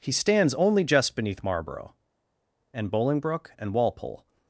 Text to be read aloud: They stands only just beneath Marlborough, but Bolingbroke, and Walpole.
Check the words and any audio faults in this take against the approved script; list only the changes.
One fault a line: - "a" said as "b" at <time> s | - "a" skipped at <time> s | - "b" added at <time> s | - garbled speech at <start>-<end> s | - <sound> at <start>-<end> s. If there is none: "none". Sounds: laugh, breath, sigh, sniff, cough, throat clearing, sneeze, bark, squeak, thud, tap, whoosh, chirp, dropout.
- "They" said as "He" at 0.0 s
- "but" said as "and" at 2.7 s